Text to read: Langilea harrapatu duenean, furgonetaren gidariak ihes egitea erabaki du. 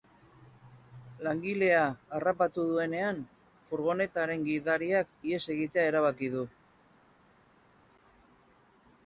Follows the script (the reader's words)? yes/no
yes